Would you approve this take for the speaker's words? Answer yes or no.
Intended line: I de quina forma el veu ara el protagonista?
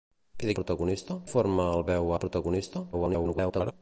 no